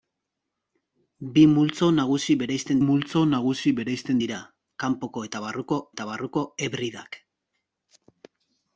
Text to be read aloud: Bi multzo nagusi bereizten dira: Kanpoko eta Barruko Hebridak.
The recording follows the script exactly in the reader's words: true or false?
false